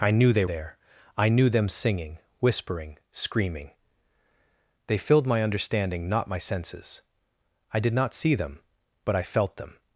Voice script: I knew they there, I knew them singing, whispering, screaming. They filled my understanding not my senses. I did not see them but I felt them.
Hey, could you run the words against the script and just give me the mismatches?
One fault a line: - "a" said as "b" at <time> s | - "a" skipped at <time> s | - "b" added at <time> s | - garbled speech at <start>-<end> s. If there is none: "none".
none